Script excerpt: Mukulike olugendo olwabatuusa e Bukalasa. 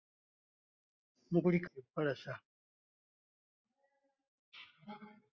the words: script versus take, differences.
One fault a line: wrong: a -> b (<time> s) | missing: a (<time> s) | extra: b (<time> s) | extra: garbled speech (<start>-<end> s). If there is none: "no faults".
missing: olugendo olwabatuusa (1.7 s)